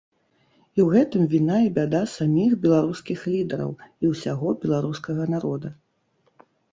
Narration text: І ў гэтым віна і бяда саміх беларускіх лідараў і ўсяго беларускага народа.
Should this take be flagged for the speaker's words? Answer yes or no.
no